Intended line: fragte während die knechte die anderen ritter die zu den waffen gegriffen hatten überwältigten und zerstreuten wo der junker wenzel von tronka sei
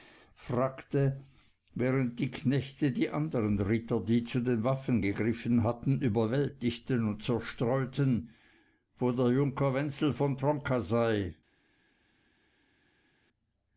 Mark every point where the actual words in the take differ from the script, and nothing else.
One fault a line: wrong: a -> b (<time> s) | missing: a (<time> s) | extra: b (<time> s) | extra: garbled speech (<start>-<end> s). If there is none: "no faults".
no faults